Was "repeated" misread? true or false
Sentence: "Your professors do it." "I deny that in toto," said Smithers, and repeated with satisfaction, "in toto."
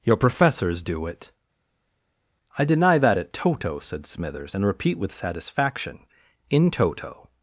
true